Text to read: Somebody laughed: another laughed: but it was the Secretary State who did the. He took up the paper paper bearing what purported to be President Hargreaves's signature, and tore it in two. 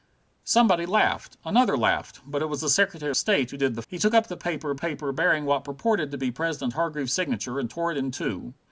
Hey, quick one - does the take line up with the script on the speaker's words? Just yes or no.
yes